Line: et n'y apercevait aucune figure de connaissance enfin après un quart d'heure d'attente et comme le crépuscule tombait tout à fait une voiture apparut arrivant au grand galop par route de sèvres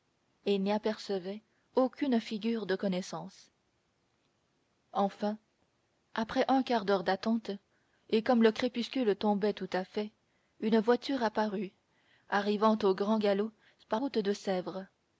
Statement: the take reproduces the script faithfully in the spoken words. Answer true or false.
true